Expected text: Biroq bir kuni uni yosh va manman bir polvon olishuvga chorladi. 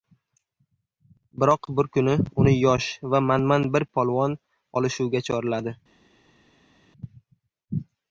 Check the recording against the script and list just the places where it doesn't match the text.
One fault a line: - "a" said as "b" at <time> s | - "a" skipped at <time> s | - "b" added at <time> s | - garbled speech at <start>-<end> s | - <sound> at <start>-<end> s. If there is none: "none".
none